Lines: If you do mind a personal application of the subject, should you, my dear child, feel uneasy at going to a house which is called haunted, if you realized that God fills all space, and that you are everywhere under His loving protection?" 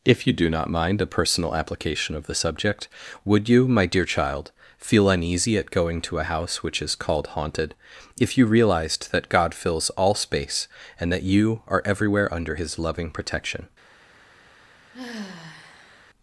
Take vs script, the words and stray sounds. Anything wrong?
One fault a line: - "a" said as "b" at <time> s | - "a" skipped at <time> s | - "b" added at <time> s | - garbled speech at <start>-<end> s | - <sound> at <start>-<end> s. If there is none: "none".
- "not" added at 0.5 s
- "should" said as "would" at 3.2 s
- sigh at 14.9-16.1 s